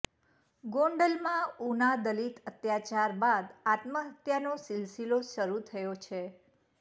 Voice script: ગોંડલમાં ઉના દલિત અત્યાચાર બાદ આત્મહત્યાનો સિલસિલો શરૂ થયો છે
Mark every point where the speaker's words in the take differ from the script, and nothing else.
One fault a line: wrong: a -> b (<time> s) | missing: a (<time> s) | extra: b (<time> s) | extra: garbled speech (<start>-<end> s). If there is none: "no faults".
no faults